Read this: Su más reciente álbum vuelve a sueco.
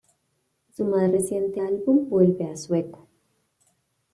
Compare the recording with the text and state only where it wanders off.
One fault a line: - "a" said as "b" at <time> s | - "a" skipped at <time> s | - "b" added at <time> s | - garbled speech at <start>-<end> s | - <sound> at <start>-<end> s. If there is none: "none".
none